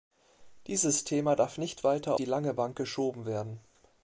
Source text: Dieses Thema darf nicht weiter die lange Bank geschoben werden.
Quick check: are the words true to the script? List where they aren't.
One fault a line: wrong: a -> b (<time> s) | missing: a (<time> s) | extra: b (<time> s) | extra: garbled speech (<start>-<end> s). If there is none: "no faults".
no faults